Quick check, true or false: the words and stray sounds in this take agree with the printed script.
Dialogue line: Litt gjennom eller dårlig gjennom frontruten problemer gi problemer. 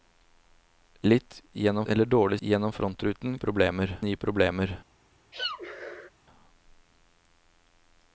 false